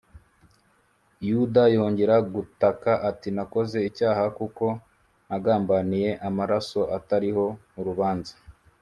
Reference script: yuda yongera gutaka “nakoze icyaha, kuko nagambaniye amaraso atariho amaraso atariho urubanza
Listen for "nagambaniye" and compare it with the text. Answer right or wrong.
right